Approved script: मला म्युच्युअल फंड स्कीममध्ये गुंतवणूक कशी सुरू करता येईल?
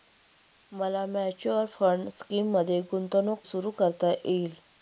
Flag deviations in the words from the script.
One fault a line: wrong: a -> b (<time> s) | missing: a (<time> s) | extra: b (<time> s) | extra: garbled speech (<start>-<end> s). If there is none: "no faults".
missing: कशी (3.4 s)